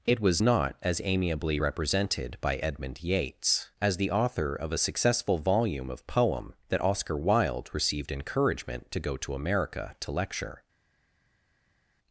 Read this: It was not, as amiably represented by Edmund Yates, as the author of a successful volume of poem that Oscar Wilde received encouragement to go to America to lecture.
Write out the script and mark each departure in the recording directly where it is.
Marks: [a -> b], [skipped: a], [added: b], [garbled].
It was not, as amiably represented by Edmund Yates, as the author of a successful volume of poem that Oscar Wilde received encouragement to go to America to lecture.